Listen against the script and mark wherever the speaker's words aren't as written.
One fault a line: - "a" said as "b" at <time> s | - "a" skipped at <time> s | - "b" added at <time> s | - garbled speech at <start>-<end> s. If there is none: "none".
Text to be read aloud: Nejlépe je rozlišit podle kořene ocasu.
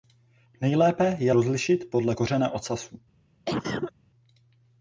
none